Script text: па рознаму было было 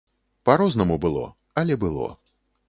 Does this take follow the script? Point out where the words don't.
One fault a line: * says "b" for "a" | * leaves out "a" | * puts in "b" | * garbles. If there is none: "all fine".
* puts in "але"